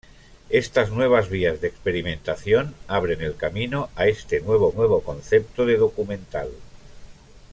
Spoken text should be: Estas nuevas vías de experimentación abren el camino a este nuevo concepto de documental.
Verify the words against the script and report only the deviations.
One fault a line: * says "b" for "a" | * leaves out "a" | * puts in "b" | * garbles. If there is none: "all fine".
* puts in "nuevo"